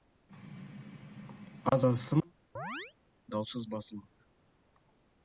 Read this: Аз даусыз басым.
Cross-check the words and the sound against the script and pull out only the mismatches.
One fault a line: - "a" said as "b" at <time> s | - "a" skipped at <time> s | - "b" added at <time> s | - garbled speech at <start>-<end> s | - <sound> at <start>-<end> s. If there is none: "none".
- "асым" added at 1.9 s
- chirp at 2.6-2.9 s